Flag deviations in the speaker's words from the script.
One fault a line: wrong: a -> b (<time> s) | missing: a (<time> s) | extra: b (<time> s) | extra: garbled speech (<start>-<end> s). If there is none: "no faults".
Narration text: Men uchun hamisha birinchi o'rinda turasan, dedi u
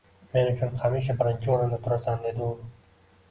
no faults